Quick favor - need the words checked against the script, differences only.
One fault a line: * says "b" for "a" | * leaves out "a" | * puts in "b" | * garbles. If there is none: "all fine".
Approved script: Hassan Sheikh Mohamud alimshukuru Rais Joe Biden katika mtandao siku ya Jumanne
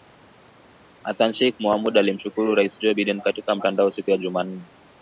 all fine